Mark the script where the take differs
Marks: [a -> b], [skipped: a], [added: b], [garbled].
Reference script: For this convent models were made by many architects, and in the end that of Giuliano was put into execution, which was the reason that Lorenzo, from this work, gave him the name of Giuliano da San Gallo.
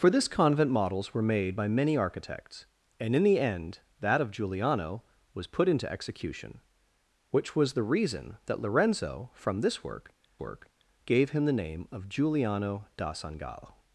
For this convent models were made by many architects, and in the end that of Giuliano was put into execution, which was the reason that Lorenzo, from this work, [added: work] gave him the name of Giuliano da San Gallo.